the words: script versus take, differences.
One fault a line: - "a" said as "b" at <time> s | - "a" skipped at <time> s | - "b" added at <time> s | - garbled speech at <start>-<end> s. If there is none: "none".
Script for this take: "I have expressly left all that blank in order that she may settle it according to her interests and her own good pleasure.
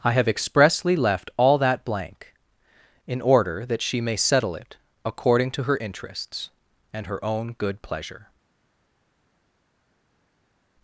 none